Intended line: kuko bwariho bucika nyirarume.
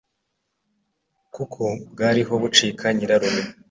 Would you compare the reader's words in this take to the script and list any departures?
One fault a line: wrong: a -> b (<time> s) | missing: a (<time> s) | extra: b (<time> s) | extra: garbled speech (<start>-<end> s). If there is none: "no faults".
no faults